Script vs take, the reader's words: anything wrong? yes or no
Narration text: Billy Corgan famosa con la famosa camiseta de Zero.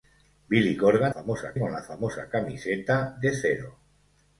no